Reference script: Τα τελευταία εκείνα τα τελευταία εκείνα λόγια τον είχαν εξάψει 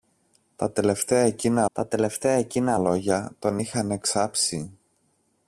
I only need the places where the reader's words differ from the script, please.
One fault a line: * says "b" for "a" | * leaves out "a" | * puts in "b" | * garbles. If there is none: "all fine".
all fine